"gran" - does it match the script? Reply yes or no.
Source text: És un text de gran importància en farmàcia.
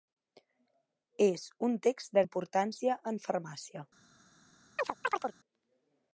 no